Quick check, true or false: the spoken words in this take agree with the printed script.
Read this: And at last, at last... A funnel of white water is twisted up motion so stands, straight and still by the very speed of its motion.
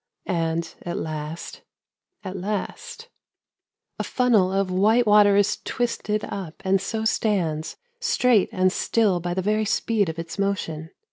false